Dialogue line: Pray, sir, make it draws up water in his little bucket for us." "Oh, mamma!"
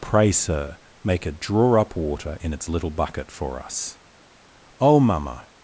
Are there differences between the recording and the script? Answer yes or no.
yes